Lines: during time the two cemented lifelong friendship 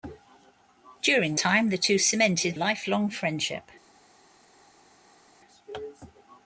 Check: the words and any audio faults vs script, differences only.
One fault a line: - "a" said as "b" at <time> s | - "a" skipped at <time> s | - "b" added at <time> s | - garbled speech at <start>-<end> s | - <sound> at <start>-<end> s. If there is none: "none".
none